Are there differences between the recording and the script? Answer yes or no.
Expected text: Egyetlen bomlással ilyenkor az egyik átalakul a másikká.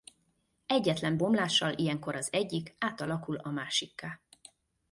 no